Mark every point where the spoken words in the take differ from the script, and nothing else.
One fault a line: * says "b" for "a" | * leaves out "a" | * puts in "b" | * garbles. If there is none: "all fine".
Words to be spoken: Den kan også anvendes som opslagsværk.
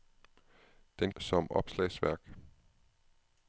* leaves out "kan også anvendes"